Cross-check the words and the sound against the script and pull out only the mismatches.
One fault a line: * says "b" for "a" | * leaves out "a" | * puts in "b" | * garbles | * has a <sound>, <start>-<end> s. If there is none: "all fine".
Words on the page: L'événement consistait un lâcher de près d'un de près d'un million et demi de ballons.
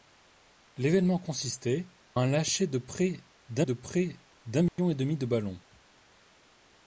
* has a dropout, 4.7-4.8 s